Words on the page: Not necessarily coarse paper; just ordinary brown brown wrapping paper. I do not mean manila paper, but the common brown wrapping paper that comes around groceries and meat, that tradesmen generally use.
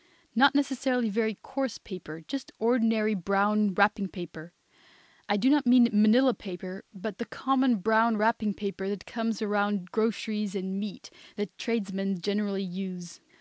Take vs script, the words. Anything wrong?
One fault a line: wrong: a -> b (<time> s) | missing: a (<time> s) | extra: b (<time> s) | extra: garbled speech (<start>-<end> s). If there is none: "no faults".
extra: very (1.1 s)
missing: brown (3.8 s)